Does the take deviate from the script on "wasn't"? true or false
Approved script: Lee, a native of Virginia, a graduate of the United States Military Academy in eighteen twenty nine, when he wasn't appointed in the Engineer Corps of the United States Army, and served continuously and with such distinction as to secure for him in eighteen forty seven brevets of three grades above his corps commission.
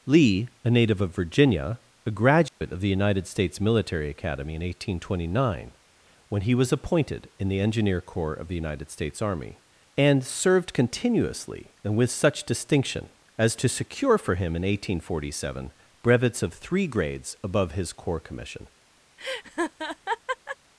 true